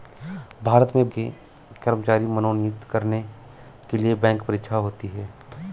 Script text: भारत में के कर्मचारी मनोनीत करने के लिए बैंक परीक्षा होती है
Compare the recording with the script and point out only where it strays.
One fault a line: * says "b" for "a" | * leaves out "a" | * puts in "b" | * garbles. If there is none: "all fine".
all fine